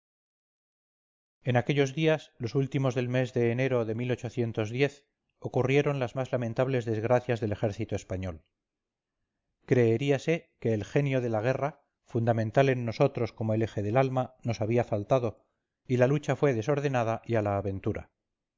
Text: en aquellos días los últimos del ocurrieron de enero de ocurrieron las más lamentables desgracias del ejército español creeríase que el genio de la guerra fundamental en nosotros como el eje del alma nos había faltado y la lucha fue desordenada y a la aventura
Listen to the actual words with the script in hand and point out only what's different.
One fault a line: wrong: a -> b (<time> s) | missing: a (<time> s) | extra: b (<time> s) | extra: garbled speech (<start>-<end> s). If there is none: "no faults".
wrong: ocurrieron -> mes (3.1 s)